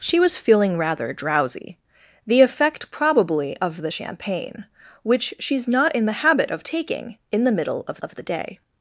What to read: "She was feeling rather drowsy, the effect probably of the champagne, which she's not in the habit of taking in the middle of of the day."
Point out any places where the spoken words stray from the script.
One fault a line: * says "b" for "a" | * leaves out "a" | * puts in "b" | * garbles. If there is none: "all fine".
all fine